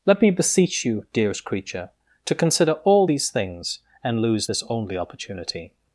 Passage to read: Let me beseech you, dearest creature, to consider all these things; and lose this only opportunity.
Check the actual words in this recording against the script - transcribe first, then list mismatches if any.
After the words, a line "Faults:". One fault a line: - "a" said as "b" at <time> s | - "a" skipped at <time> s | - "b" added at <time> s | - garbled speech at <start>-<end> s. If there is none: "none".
Let me beseech you, dearest creature, to consider all these things; and lose this only opportunity.
Faults:
none